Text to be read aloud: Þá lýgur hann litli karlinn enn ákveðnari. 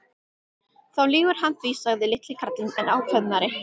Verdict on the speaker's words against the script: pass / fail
fail